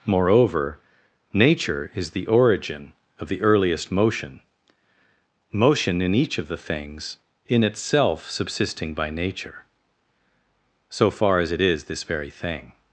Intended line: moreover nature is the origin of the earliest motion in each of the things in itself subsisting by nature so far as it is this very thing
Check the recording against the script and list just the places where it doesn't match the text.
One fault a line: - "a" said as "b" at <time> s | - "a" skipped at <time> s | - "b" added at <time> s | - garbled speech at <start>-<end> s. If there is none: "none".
- "motion" added at 5.5 s